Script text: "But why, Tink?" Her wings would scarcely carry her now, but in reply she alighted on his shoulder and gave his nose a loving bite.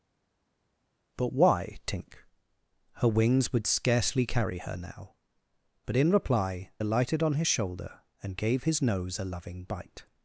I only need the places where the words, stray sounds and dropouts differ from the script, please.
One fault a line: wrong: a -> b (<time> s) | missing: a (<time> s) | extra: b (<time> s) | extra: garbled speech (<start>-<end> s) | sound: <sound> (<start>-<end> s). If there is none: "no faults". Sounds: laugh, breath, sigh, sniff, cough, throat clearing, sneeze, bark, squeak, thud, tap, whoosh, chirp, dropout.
missing: she (6.7 s)